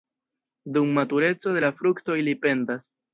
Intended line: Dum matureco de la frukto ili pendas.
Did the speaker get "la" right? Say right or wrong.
right